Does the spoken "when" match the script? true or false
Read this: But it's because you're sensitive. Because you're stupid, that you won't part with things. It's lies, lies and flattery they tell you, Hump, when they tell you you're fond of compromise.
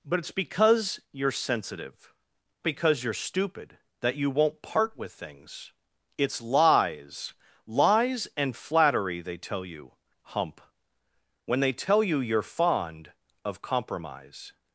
true